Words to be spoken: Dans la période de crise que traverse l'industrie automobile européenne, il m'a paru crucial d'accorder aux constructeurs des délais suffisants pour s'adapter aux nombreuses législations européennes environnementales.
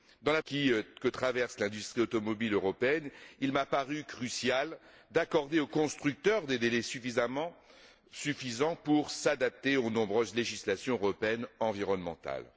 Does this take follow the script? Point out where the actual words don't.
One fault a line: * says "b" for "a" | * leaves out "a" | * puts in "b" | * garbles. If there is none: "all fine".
* leaves out "période de crise"